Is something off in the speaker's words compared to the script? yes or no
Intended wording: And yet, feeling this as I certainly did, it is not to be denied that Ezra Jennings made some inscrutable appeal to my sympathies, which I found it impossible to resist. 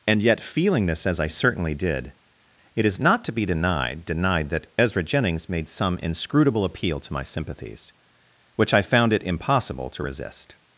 yes